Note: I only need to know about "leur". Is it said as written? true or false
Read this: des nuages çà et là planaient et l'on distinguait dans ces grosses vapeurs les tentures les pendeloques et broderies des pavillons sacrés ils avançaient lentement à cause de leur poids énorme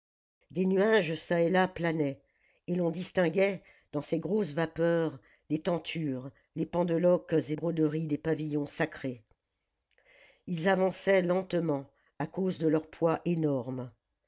true